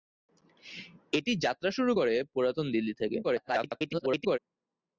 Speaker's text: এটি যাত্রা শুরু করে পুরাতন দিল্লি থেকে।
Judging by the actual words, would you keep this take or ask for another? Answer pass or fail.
fail